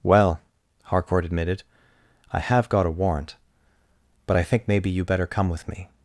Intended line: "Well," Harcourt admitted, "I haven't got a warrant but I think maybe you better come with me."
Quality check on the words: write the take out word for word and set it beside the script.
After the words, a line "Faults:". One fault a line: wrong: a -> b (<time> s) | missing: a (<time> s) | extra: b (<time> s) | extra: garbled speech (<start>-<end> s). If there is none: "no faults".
"Well," Harcourt admitted, "I have got a warrant but I think maybe you better come with me."
Faults:
wrong: haven't -> have (2.4 s)